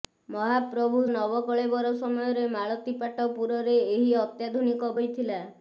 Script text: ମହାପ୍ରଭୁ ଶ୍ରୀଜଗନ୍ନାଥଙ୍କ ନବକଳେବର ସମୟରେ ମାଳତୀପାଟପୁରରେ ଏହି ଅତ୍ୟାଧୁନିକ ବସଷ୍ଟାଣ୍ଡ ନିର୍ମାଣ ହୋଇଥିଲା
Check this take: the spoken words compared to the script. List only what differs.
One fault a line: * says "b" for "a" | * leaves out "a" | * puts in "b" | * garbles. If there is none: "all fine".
* leaves out "ଶ୍ରୀଜଗନ୍ନାଥଙ୍କ"
* leaves out "ବସଷ୍ଟାଣ୍ଡ ନିର୍ମାଣ"